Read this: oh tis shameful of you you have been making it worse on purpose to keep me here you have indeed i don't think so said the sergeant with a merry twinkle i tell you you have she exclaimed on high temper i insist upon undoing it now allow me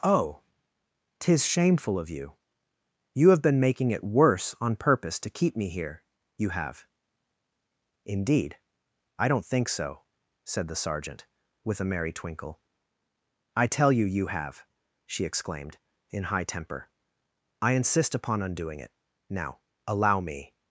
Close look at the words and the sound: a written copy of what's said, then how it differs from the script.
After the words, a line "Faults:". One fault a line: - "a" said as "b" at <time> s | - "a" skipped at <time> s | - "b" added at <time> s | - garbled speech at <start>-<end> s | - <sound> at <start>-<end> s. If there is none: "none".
oh tis shameful of you you have been making it worse on purpose to keep me here you have indeed i don't think so said the sergeant with a merry twinkle i tell you you have she exclaimed in high temper i insist upon undoing it now allow me
Faults:
- "on" said as "in" at 16.1 s